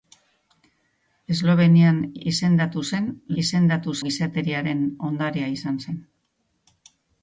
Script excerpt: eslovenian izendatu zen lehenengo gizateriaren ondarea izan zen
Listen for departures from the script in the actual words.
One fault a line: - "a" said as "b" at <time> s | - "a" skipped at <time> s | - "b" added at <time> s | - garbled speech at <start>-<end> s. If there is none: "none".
- "lehenengo" said as "izendatu" at 3.4 s